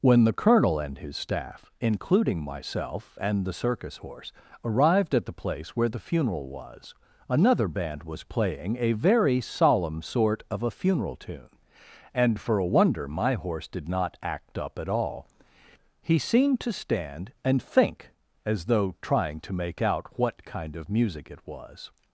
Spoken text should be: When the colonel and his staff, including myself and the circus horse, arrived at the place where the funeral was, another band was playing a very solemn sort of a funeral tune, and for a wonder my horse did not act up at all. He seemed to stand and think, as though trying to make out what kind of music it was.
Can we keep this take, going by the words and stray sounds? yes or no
yes